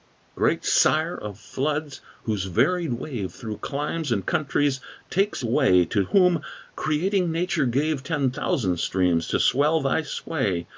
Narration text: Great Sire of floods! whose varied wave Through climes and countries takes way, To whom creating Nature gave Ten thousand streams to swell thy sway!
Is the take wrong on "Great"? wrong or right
right